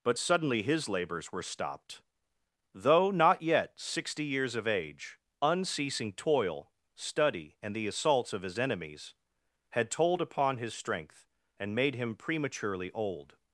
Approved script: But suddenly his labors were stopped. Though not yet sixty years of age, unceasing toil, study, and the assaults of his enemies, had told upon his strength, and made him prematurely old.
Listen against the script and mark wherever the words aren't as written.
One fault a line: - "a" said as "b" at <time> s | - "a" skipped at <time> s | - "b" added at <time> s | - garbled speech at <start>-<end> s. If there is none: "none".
none